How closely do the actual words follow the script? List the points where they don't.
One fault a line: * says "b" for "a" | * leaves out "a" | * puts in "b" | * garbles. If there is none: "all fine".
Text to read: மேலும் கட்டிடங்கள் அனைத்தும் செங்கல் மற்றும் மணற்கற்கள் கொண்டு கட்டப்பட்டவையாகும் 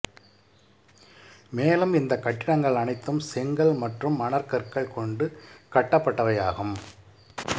* puts in "இந்த"